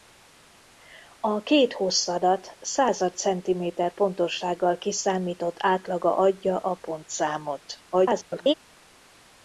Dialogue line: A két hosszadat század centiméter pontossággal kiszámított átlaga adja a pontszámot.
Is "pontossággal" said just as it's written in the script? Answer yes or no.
yes